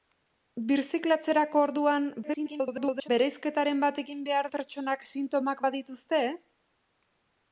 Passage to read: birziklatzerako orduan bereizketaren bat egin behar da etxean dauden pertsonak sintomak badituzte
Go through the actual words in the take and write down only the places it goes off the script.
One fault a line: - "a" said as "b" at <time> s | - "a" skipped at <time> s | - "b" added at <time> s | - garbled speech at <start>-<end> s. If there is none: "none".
- garbled speech at 2.2-3.1 s
- "da etxean dauden" skipped at 4.5 s